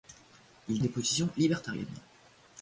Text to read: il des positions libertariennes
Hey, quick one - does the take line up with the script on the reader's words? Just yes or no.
yes